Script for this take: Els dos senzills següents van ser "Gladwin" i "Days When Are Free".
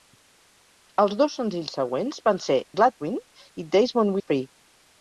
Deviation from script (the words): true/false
false